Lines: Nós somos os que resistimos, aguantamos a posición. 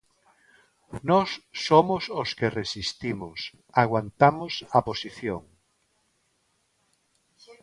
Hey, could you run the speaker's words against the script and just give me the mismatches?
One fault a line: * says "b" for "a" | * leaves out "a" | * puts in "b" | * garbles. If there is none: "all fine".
all fine